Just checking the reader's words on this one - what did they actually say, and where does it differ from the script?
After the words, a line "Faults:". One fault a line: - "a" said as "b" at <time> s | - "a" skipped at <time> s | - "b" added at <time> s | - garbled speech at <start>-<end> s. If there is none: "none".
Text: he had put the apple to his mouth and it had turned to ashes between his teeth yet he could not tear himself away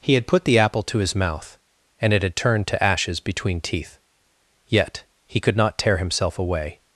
he had put the apple to his mouth and it had turned to ashes between teeth yet he could not tear himself away
Faults:
- "his" skipped at 3.6 s